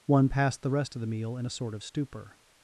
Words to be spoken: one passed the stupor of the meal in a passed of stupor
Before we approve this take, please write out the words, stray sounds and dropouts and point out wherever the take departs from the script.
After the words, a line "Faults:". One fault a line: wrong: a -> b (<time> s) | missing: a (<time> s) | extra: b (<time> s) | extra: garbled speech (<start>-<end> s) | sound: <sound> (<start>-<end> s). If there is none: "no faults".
one passed the rest of the meal in a sort of stupor
Faults:
wrong: stupor -> rest (0.7 s)
wrong: passed -> sort (1.5 s)